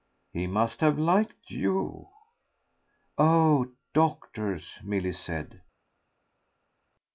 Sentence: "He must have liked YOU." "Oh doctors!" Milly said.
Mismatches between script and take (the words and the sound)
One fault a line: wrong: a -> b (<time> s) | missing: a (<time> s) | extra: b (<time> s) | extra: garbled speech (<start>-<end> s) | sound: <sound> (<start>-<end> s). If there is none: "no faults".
no faults